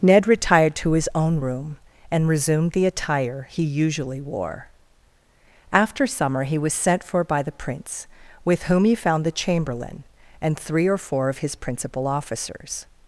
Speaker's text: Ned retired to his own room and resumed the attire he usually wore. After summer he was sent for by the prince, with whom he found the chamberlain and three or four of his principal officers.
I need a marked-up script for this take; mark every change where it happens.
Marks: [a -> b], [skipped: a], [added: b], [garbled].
Ned retired to his own room and resumed the attire he usually wore. After summer he was sent for by the prince, with whom he found the chamberlain and three or four of his principal officers.